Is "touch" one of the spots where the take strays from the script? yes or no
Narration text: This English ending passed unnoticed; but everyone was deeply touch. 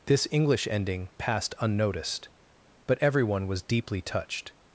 yes